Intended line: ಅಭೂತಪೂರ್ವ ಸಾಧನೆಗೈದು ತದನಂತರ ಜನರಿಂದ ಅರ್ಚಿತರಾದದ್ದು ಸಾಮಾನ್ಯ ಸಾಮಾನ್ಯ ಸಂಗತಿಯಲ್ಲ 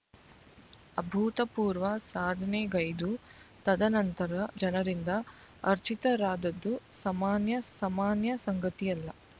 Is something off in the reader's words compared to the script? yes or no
no